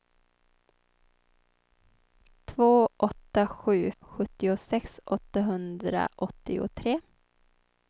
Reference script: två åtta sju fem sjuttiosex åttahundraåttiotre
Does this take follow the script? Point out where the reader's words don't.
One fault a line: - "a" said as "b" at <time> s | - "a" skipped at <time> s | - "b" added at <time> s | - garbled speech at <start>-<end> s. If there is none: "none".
- "fem" skipped at 3.9 s